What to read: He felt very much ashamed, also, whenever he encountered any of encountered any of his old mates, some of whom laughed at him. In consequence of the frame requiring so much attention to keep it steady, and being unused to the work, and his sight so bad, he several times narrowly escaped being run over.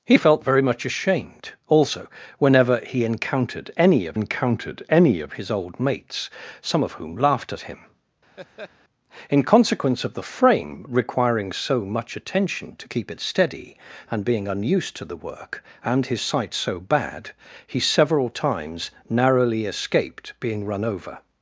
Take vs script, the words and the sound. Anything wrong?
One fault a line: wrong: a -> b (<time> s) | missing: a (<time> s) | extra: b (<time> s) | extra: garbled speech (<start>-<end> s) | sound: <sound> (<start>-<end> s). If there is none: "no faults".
sound: laugh (8.4-8.7 s)